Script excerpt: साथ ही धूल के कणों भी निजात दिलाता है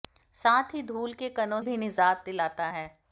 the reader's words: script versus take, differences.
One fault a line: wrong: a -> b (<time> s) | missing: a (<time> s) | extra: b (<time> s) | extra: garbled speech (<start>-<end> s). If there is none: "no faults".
no faults